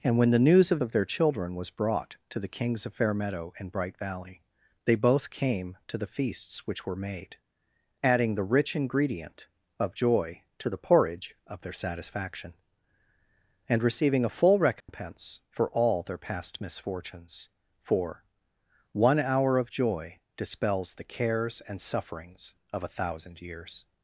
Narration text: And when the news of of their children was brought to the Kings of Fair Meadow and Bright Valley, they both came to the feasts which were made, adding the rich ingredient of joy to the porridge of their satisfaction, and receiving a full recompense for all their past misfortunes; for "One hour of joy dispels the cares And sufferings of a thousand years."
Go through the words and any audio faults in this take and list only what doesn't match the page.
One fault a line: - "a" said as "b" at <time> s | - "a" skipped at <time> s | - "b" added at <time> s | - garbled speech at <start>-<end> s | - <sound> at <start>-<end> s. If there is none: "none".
- dropout at 14.8-14.9 s